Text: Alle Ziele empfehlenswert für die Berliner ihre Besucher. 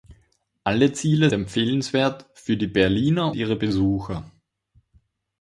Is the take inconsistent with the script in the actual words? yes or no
no